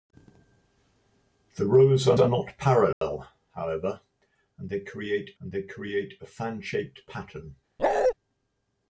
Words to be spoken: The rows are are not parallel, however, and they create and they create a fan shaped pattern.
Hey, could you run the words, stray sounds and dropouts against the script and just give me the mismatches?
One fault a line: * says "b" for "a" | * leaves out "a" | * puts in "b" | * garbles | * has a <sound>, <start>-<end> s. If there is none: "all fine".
* has a dropout, 2.9-3.0 s
* has a bark, 7.8-8.1 s